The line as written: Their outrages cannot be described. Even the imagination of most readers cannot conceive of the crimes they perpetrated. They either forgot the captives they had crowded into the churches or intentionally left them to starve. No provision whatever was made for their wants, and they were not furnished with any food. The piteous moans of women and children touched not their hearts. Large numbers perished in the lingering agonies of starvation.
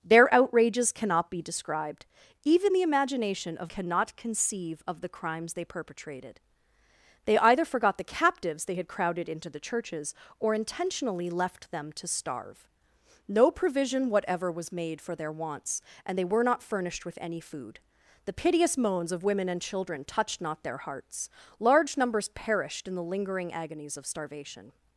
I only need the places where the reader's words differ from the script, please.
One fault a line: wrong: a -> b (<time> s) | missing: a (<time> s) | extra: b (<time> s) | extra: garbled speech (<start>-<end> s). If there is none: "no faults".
missing: most readers (3.7 s)